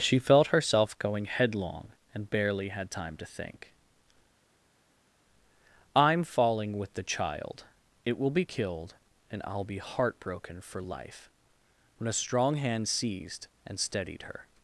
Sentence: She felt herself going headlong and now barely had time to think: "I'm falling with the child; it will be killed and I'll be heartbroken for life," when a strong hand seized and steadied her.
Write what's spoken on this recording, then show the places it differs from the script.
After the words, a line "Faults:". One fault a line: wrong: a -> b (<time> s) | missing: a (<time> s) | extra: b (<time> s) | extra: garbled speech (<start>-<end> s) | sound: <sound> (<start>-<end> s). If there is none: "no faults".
She felt herself going headlong and barely had time to think: "I'm falling with the child; it will be killed and I'll be heartbroken for life," when a strong hand seized and steadied her.
Faults:
missing: now (2.3 s)